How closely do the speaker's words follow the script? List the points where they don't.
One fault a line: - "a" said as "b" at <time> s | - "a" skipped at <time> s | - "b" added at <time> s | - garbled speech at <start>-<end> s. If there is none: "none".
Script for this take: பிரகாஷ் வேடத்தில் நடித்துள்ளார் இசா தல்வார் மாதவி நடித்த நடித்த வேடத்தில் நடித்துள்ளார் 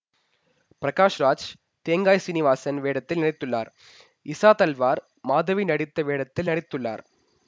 - "ராஜ் தேங்காய் சீனிவாசன்" added at 1.2 s
- "நடித்த" skipped at 6.0 s